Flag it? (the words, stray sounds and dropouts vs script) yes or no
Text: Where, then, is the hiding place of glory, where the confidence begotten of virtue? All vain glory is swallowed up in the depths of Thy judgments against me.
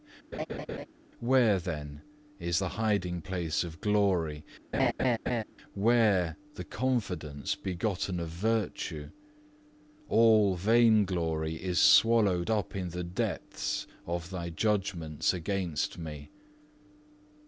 yes